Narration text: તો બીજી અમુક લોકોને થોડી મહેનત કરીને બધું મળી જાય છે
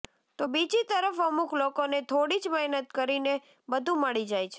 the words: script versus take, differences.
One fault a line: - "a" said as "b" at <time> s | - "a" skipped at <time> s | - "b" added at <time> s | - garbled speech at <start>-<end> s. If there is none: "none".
- "તરફ" added at 0.8 s
- "જ" added at 2.4 s